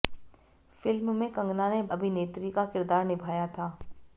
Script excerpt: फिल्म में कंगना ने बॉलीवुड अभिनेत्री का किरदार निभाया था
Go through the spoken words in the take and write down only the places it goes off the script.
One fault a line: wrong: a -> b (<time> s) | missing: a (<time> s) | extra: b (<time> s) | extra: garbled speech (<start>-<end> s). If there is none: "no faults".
missing: बॉलीवुड (1.8 s)